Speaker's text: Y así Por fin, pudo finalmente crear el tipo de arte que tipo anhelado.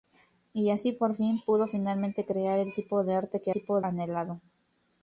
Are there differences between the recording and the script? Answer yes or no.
no